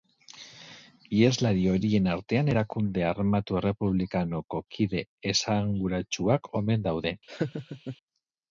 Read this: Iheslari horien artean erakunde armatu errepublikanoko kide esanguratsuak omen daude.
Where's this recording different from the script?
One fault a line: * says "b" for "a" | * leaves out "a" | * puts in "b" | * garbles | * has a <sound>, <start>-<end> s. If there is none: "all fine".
* has a laugh, 7.3-8.0 s